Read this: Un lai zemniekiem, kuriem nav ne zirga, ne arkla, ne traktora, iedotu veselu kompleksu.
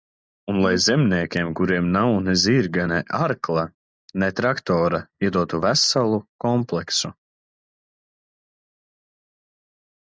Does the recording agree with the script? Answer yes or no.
yes